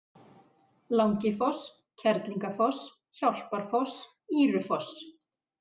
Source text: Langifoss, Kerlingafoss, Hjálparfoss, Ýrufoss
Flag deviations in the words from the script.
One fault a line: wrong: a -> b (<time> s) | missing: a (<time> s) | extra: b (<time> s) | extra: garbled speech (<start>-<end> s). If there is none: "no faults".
no faults